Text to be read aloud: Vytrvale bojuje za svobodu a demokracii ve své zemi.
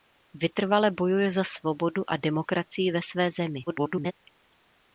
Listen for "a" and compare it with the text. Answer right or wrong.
right